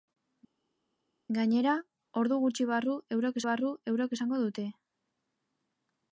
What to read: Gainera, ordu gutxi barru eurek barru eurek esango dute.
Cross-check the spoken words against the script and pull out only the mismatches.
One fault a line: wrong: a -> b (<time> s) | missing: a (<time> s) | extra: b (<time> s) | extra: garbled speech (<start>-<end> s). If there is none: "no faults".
no faults